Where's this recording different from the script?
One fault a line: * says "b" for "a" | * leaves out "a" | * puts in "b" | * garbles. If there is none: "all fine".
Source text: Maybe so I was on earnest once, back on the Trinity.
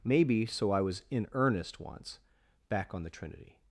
* says "in" for "on"